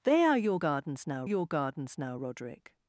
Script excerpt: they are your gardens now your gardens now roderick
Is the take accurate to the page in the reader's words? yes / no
yes